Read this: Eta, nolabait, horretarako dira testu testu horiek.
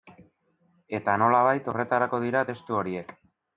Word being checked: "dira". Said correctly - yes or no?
yes